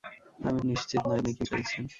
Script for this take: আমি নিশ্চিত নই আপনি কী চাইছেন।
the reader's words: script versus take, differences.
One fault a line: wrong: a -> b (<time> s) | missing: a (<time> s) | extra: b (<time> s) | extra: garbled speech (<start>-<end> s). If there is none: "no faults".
no faults